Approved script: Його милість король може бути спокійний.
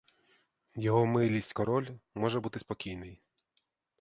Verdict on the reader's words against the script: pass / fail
pass